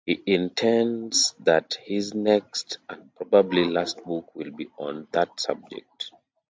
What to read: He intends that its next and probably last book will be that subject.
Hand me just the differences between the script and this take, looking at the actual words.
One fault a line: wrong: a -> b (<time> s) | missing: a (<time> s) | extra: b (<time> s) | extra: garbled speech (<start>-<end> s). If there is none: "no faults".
wrong: its -> his (1.9 s)
extra: on (4.8 s)